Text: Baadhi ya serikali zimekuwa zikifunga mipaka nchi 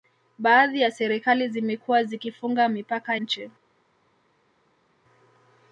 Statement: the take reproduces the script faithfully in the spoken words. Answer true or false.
true